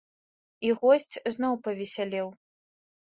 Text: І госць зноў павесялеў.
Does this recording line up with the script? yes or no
yes